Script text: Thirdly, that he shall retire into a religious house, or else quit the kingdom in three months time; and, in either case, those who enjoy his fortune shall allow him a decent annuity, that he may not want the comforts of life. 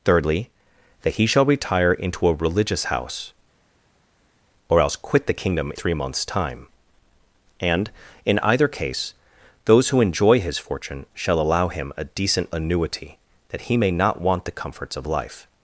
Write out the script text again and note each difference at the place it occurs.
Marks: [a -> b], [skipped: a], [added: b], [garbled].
Thirdly, that he shall retire into a religious house, or else quit the kingdom [skipped: in] three months time; and, in either case, those who enjoy his fortune shall allow him a decent annuity, that he may not want the comforts of life.